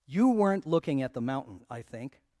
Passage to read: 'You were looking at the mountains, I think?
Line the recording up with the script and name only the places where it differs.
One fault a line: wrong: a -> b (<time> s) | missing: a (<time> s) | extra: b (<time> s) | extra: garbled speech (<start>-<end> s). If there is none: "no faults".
wrong: were -> weren't (0.3 s)
wrong: mountains -> mountain (1.2 s)